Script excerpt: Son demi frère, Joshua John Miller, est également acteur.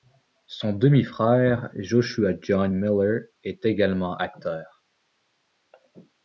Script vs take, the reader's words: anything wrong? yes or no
no